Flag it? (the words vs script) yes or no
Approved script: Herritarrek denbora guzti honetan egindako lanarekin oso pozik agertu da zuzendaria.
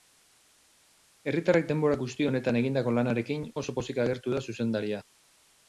no